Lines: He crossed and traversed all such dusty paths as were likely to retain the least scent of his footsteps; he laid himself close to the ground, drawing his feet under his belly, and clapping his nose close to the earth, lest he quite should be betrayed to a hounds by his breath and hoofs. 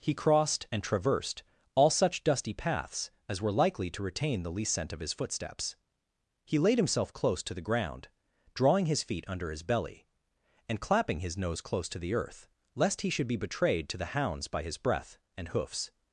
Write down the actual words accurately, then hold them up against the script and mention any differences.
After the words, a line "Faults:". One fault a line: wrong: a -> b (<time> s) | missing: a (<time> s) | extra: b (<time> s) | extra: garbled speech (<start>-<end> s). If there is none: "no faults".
He crossed and traversed all such dusty paths as were likely to retain the least scent of his footsteps; he laid himself close to the ground, drawing his feet under his belly, and clapping his nose close to the earth, lest he should be betrayed to the hounds by his breath and hoofs.
Faults:
missing: quite (13.1 s)
wrong: a -> the (14.0 s)